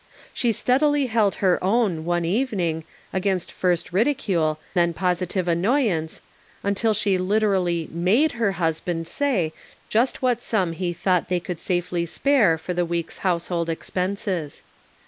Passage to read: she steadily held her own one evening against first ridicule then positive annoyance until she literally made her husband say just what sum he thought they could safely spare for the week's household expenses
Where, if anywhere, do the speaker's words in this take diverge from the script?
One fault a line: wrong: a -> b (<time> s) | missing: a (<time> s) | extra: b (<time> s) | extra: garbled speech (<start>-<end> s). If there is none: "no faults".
no faults